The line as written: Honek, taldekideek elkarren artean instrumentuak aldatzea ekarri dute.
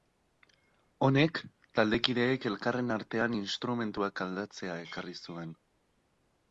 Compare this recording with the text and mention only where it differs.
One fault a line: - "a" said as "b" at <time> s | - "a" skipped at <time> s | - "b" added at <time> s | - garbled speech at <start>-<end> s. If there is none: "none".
- "dute" said as "zuen" at 5.3 s